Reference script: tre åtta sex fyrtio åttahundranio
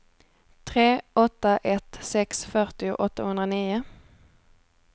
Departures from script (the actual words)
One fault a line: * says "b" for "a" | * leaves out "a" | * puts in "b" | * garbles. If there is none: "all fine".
* puts in "ett"